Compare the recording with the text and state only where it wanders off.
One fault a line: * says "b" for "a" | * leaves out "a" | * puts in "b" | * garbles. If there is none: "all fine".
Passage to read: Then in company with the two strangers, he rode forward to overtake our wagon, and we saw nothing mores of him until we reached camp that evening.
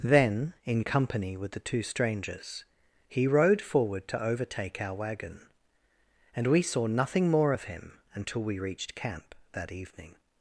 * says "more" for "mores"